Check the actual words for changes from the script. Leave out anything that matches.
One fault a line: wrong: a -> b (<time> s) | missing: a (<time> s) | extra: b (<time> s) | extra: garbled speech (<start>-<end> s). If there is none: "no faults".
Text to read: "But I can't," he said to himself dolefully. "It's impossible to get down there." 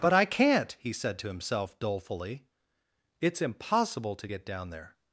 no faults